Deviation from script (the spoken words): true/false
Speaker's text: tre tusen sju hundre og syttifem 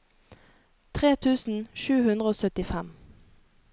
false